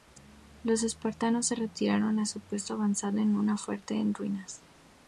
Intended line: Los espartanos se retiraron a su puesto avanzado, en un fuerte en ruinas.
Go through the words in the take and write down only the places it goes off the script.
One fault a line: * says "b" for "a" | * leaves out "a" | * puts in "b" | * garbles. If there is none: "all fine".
all fine